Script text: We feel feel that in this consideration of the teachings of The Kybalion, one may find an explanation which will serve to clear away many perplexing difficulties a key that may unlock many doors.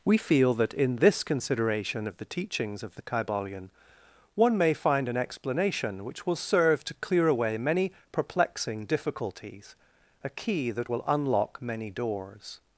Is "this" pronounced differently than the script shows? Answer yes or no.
no